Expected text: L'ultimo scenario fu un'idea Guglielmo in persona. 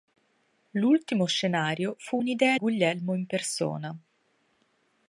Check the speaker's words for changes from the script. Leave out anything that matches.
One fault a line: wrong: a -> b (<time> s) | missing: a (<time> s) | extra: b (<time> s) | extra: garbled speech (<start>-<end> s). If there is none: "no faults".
no faults